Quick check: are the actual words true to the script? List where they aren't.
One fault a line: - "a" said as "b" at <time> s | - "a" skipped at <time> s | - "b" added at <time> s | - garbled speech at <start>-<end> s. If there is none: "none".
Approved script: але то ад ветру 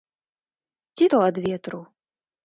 - "але" said as "ці" at 0.9 s